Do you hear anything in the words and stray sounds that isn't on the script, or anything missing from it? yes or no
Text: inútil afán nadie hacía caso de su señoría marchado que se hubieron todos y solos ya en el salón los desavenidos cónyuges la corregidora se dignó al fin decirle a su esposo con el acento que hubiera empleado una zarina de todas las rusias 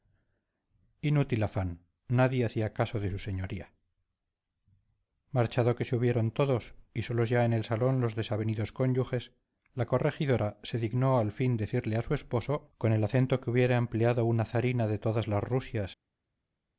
no